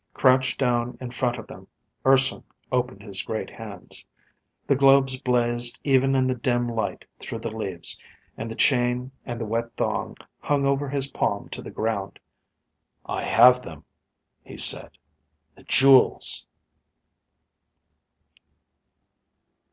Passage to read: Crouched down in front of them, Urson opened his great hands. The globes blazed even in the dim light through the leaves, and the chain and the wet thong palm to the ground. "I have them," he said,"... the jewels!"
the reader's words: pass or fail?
fail